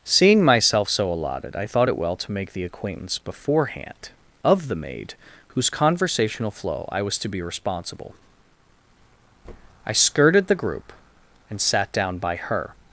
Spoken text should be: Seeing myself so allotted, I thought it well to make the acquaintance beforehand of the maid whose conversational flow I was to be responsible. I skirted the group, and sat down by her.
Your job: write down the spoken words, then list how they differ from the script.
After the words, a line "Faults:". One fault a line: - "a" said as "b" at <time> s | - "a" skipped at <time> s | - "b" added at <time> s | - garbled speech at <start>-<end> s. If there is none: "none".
Seeing myself so allotted, I thought it well to make the acquaintance beforehand of the maid whose conversational flow I was to be responsible. I skirted the group, and sat down by her.
Faults:
none